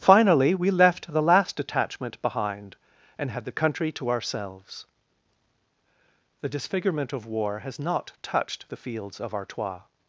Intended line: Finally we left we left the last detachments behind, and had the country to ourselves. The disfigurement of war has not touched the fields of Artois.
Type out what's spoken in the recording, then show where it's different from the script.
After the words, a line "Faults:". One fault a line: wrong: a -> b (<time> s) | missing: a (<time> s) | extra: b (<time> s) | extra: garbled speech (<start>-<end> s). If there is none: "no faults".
Finally we left the last detachment behind, and had the country to ourselves. The disfigurement of war has not touched the fields of Artois.
Faults:
missing: we left (1.1 s)
wrong: detachments -> detachment (1.6 s)